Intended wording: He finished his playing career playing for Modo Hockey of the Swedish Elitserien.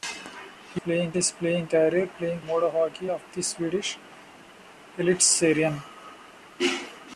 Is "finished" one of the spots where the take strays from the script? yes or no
yes